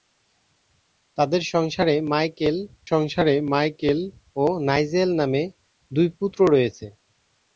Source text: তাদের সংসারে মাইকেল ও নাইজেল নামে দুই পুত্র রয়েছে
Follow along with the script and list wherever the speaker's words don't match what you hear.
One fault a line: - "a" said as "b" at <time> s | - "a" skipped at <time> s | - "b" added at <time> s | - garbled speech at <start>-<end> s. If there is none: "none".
- "সংসারে মাইকেল" added at 2.9 s